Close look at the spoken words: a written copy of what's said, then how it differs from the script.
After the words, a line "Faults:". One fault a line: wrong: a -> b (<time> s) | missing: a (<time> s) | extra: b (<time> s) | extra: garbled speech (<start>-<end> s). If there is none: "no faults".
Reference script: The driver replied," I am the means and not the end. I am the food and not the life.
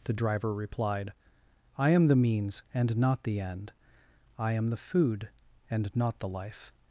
The driver replied," I am the means and not the end. I am the food and not the life.
Faults:
no faults